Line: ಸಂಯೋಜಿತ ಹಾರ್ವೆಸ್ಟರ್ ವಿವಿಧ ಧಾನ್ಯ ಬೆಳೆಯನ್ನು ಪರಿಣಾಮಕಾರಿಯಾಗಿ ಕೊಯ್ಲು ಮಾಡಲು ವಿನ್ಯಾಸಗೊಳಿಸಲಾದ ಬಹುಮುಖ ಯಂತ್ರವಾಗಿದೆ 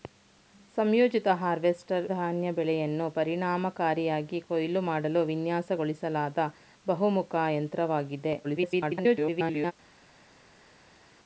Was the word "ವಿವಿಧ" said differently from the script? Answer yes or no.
yes